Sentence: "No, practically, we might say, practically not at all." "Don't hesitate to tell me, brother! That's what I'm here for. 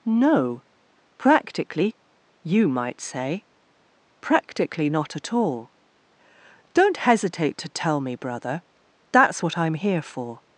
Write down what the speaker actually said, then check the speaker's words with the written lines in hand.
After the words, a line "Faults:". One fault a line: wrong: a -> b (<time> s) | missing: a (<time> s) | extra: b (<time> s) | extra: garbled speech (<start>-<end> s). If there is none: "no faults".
"No, practically, you might say, practically not at all." "Don't hesitate to tell me, brother! That's what I'm here for.
Faults:
wrong: we -> you (2.4 s)